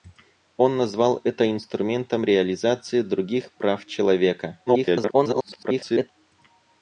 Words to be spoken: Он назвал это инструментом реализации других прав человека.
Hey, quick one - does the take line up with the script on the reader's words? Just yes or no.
no